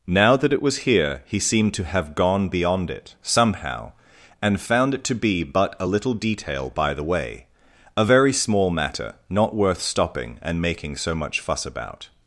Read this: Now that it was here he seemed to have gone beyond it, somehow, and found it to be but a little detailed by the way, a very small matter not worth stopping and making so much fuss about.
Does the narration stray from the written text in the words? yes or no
yes